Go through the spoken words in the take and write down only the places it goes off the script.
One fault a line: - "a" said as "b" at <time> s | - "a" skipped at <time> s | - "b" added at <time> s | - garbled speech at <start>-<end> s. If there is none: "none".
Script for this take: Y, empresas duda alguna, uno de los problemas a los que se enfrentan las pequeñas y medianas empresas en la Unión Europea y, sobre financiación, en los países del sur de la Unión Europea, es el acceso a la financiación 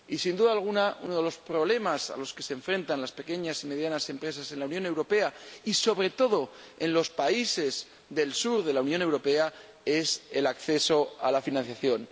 - "empresas" said as "sin" at 0.2 s
- "financiación" said as "todo" at 6.1 s